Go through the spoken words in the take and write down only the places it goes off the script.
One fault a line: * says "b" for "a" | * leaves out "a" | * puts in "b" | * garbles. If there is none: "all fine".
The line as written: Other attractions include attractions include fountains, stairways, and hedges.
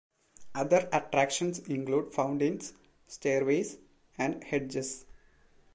* leaves out "attractions include"